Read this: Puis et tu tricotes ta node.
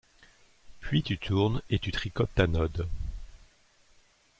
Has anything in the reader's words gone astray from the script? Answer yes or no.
yes